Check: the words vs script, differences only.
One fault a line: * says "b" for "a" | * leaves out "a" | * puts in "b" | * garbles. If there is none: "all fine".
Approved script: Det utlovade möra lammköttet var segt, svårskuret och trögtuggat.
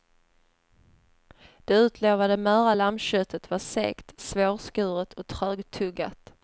all fine